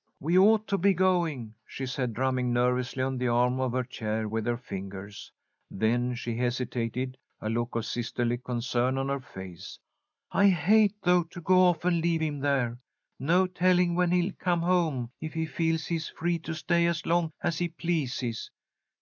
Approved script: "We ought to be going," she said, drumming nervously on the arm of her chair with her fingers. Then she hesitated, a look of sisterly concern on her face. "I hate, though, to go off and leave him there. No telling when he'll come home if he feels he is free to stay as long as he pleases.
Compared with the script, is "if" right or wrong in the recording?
right